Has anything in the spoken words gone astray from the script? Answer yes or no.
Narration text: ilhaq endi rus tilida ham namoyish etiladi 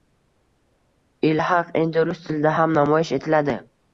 no